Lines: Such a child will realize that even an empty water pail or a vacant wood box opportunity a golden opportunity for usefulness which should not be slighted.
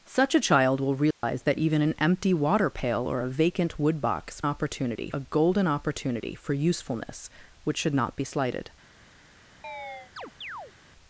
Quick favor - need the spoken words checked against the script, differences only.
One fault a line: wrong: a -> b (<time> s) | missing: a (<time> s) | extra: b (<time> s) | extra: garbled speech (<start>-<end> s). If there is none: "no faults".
no faults